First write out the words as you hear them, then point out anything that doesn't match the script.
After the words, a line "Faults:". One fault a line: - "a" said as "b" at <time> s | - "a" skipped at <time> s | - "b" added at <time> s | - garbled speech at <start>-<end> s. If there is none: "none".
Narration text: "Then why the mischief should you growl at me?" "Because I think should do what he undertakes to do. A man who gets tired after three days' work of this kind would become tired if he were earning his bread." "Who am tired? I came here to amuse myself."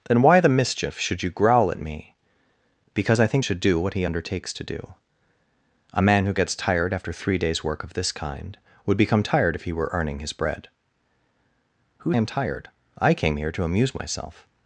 "Then why the mischief should you growl at me?" "Because I think should do what he undertakes to do. A man who gets tired after three days' work of this kind would become tired if he were earning his bread." "Who am tired? I came here to amuse myself."
Faults:
none